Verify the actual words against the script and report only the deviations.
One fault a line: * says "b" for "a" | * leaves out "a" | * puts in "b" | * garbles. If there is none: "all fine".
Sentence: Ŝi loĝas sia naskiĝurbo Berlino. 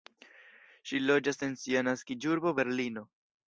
* puts in "en"